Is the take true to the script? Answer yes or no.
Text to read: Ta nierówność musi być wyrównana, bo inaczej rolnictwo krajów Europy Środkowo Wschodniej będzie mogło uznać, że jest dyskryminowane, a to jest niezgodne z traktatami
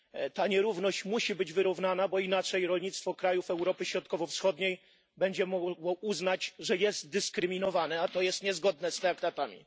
yes